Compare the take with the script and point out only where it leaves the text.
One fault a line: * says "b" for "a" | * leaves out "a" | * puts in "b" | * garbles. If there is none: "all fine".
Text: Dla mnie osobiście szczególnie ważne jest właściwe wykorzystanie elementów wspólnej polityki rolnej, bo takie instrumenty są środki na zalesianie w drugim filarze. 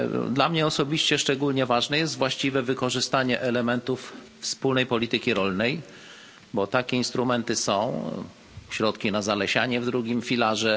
all fine